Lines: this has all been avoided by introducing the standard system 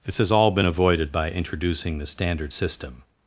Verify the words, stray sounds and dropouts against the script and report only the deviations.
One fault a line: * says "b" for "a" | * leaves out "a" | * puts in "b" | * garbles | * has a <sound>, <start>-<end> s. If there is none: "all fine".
all fine